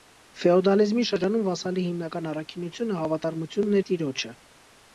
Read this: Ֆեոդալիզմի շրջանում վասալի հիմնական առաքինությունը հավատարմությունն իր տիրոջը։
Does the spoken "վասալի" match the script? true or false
true